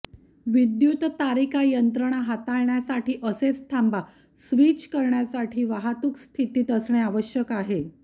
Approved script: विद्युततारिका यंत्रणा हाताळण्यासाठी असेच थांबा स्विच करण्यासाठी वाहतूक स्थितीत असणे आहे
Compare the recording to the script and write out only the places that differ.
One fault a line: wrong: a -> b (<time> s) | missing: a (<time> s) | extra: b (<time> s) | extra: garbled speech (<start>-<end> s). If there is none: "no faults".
extra: आवश्यक (7.0 s)